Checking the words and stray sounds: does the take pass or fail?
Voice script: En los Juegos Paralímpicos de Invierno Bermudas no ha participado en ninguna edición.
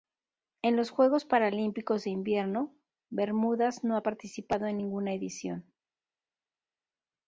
pass